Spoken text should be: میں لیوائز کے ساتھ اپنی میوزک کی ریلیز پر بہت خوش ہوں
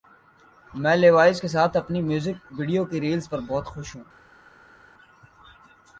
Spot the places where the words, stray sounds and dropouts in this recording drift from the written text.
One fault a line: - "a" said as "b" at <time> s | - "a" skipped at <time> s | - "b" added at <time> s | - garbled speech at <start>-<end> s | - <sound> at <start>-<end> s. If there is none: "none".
- "ویڈیو" added at 2.6 s